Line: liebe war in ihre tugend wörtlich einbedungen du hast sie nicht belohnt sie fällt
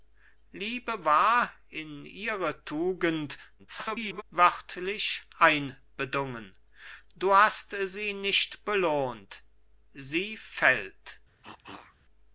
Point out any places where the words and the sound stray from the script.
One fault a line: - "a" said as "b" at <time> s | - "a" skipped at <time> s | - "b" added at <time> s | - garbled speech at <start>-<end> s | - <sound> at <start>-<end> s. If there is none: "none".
- garbled speech at 3.6-4.2 s
- cough at 11.4-12.0 s